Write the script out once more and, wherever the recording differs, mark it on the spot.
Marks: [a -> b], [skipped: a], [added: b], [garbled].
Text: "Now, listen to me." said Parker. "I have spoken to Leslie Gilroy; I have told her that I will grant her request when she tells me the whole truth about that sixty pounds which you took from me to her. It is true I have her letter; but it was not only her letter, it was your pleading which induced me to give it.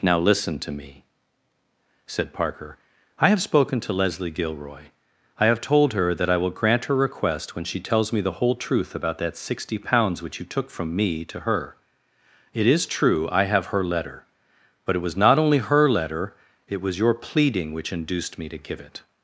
"Now, listen to me." said Parker. "I have spoken to Leslie Gilroy; I have told her that I will grant her request when she tells me the whole truth about that sixty pounds which you took from me to her. It is true I have her letter; but it was not only her letter, it was your pleading which induced me to give it.